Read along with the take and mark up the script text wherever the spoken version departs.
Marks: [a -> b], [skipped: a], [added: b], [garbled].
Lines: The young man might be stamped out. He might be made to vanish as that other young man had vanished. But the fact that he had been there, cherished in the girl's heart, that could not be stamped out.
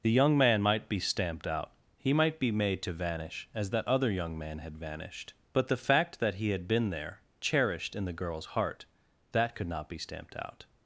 The young man might be stamped out. He might be made to vanish as that other young man had vanished. But the fact that he had been there, cherished in the girl's heart, that could not be stamped out.